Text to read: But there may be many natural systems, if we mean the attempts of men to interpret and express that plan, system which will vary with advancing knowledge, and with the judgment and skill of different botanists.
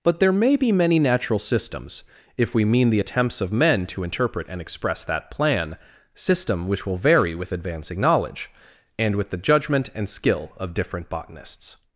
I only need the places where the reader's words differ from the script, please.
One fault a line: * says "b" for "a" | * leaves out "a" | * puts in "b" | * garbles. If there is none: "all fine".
all fine